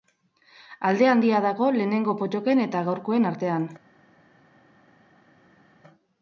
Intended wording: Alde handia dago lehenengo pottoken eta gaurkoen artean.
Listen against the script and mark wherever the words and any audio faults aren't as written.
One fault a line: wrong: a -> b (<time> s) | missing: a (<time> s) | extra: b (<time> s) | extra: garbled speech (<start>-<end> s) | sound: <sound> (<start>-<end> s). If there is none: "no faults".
no faults